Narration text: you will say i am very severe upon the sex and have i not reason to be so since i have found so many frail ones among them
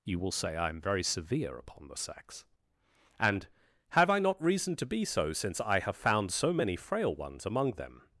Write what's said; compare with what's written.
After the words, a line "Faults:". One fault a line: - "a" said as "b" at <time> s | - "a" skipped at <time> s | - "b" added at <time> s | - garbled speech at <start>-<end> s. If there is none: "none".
you will say i am very severe upon the sex and have i not reason to be so since i have found so many frail ones among them
Faults:
none